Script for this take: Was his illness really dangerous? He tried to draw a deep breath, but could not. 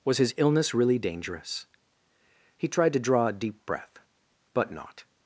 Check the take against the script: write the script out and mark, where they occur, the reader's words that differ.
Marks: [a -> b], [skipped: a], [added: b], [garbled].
Was his illness really dangerous? He tried to draw a deep breath, but [skipped: could] not.